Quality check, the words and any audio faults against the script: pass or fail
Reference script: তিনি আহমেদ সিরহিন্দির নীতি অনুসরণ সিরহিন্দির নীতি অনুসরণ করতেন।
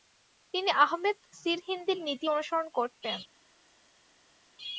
fail